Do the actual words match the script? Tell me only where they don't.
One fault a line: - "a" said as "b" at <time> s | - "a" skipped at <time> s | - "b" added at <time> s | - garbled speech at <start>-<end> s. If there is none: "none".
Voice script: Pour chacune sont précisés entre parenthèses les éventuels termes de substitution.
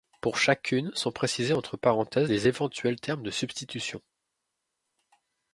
none